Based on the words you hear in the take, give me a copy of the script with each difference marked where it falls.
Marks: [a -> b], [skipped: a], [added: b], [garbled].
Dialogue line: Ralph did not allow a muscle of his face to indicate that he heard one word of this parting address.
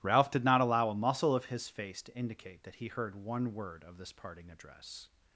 Ralph did not allow a muscle of his face to indicate that he heard one word of this parting address.